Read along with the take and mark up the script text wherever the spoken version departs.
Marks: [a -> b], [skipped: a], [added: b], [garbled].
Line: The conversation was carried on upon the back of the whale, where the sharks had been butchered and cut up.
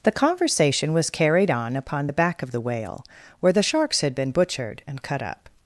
The conversation was carried on upon the back of the whale, where the sharks had been butchered and cut up.